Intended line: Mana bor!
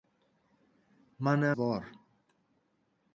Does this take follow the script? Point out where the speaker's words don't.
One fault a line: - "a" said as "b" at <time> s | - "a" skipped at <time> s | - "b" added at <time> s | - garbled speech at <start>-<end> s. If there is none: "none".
none